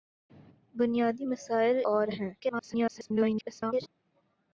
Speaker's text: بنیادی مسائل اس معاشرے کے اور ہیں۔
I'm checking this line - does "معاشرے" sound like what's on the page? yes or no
no